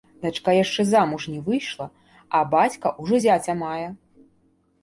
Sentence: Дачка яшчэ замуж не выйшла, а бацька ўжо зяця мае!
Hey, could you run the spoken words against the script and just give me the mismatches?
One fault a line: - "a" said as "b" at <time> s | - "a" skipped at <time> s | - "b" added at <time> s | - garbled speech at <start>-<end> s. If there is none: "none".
none